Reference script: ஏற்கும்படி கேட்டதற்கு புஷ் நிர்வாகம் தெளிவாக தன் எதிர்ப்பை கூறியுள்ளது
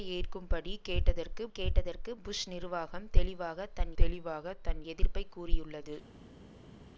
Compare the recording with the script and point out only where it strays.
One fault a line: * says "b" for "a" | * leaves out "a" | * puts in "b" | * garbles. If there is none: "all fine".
* puts in "கேட்டதற்கு"
* puts in "தெளிவாக தன்"